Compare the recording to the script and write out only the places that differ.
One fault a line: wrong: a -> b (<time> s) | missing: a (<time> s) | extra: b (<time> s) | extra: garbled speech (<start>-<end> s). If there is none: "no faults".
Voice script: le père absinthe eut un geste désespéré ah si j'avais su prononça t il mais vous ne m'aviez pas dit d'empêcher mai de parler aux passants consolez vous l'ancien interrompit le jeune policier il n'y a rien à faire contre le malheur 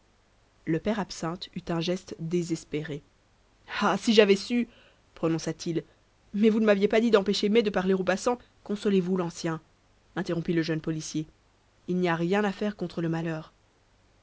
no faults